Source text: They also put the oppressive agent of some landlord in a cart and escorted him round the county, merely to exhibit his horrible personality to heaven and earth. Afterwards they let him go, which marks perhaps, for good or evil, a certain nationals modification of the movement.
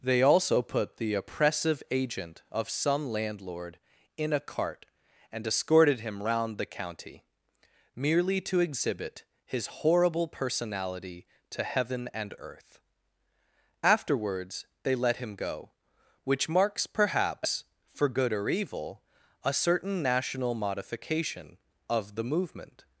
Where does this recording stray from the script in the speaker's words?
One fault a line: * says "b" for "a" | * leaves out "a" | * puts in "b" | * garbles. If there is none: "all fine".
* says "national" for "nationals"